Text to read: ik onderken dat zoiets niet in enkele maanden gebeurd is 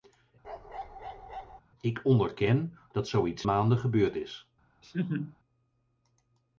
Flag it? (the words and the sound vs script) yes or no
yes